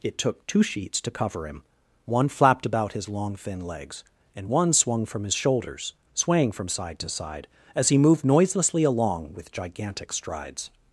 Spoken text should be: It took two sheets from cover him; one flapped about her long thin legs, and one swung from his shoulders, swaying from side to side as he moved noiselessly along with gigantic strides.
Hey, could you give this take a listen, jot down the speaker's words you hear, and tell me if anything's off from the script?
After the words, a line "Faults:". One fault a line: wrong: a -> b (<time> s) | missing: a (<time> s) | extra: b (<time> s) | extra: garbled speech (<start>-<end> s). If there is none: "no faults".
It took two sheets to cover him; one flapped about his long thin legs, and one swung from his shoulders, swaying from side to side as he moved noiselessly along with gigantic strides.
Faults:
wrong: from -> to (1.0 s)
wrong: her -> his (2.9 s)